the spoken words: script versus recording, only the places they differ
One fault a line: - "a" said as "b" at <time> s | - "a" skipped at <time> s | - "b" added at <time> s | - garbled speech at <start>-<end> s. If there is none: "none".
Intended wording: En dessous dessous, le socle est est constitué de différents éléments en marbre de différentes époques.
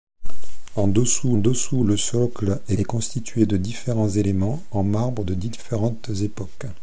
none